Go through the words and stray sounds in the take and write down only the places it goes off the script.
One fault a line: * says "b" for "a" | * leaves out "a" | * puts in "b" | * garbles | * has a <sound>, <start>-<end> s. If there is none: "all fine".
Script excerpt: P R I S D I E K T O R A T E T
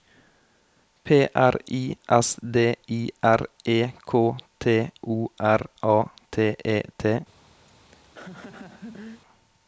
* puts in "R"
* has a laugh, 7.7-9.2 s